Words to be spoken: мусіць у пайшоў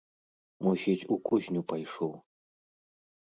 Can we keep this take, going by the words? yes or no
no